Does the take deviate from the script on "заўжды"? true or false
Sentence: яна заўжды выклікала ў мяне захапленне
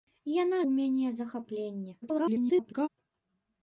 true